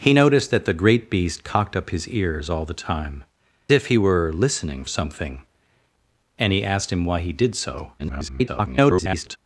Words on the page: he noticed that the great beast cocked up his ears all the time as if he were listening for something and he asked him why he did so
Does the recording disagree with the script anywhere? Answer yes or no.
yes